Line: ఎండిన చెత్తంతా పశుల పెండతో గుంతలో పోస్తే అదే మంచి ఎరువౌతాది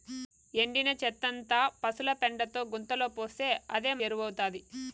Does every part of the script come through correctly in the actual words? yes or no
no